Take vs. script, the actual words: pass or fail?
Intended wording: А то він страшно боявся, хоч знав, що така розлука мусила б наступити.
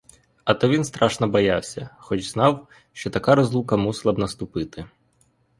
pass